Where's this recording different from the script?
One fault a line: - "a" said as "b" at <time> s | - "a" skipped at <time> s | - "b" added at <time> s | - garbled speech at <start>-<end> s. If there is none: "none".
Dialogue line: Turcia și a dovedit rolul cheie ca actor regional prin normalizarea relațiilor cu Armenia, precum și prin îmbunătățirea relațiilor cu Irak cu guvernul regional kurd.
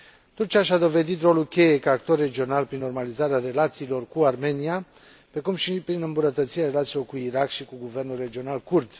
- "și" added at 7.5 s